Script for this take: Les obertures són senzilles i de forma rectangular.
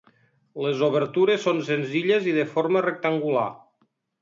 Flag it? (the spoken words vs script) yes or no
no